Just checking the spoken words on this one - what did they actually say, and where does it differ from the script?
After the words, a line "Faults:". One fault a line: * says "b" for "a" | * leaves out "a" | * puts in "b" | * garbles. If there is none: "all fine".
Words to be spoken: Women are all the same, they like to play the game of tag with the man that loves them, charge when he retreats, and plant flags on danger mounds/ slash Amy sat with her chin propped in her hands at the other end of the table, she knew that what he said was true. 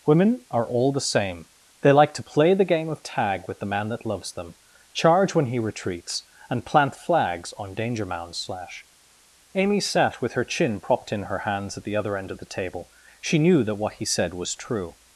Women are all the same, they like to play the game of tag with the man that loves them, charge when he retreats, and plant flags on danger mounds/ slash Amy sat with her chin propped in her hands at the other end of the table, she knew that what he said was true.
Faults:
all fine